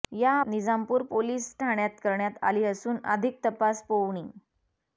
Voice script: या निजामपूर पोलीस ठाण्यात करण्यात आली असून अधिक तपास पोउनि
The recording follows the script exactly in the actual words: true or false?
true